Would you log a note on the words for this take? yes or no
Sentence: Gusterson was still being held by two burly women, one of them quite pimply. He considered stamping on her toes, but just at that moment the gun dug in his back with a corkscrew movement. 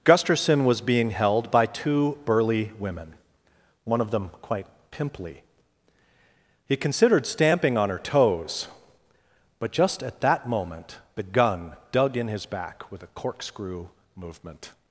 yes